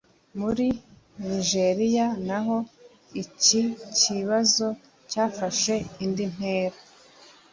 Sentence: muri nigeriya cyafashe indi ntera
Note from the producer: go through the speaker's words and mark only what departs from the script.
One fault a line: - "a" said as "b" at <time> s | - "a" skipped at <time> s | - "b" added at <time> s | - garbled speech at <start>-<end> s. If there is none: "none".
- "naho iki kibazo" added at 2.3 s